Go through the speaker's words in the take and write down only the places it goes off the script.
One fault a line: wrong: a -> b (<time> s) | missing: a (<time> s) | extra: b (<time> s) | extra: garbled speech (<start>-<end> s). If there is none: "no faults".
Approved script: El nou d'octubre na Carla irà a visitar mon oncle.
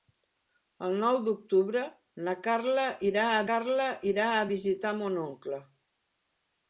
extra: Carla irà a (3.5 s)